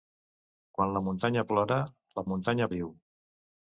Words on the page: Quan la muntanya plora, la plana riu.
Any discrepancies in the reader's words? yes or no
yes